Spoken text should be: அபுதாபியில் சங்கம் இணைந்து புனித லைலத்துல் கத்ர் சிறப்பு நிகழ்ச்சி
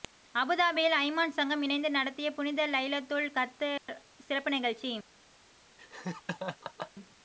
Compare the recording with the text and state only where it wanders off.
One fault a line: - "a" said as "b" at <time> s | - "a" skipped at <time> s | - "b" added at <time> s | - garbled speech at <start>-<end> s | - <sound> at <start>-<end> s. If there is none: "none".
- "அய்மான்" added at 0.9 s
- "நடத்திய" added at 1.9 s
- dropout at 3.8-3.9 s
- laugh at 5.8-6.9 s